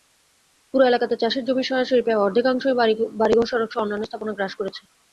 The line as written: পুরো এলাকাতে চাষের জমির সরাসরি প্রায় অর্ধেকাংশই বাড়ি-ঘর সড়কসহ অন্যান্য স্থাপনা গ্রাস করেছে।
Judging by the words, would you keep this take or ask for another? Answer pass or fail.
pass